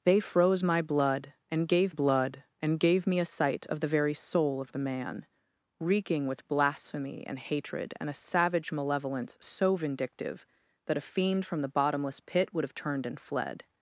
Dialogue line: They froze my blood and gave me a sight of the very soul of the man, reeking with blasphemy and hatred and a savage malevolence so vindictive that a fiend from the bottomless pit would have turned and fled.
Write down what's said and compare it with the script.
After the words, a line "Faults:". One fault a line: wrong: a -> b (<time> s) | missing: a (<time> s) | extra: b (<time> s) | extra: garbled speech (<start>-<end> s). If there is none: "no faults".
They froze my blood and gave blood and gave me a sight of the very soul of the man, reeking with blasphemy and hatred and a savage malevolence so vindictive that a fiend from the bottomless pit would have turned and fled.
Faults:
extra: blood and gave (1.9 s)